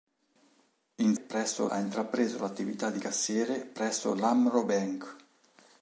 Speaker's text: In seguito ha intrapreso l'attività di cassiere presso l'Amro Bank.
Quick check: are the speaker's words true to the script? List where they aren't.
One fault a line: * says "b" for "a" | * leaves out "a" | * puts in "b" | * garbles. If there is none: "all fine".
* says "presso" for "seguito"